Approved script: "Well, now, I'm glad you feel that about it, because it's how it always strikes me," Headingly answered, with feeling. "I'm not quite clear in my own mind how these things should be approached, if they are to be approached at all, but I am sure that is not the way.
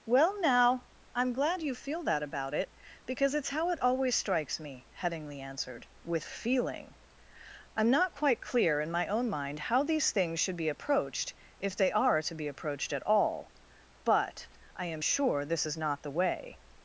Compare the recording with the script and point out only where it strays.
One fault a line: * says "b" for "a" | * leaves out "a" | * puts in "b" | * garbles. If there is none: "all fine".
* says "this" for "that"